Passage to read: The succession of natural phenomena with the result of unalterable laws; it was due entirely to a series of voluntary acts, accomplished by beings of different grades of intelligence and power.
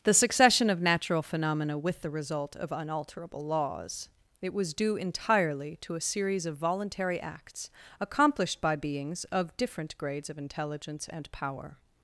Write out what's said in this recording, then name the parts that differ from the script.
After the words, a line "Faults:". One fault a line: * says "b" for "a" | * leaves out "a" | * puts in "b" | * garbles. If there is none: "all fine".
The succession of natural phenomena with the result of unalterable laws; it was due entirely to a series of voluntary acts, accomplished by beings of different grades of intelligence and power.
Faults:
all fine